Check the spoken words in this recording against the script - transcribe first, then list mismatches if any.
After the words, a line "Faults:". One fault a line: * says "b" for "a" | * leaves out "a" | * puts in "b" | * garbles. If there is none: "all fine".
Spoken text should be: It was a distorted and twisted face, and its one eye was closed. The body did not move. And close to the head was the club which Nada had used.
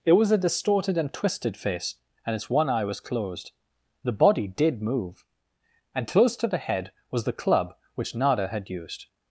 It was a distorted and twisted face, and its one eye was closed. The body did move. And close to the head was the club which Nada had used.
Faults:
* leaves out "not"